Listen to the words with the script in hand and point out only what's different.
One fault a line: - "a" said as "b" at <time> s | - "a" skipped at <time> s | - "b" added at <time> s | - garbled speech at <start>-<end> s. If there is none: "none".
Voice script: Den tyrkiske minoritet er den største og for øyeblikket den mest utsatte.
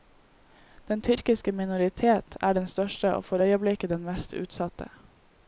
none